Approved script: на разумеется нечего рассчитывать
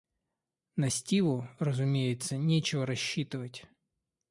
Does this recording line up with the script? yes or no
no